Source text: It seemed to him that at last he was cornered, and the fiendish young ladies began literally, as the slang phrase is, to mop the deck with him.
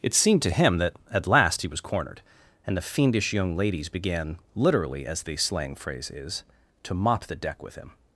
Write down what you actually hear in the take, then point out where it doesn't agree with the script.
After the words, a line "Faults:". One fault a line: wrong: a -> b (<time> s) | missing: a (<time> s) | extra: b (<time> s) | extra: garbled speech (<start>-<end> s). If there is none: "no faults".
It seemed to him that at last he was cornered, and the fiendish young ladies began literally, as the slang phrase is, to mop the deck with him.
Faults:
no faults